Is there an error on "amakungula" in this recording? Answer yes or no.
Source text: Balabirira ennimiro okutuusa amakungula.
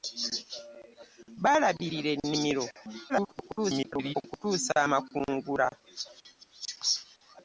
no